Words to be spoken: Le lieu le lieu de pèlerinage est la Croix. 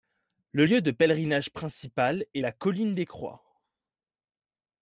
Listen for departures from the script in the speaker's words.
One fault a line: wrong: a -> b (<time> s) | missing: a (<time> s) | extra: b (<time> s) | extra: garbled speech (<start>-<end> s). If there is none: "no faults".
missing: le lieu (0.8 s)
extra: principal (1.5 s)
extra: Colline des (2.5 s)